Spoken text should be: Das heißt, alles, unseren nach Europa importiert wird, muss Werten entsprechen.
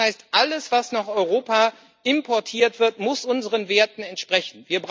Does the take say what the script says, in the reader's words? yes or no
no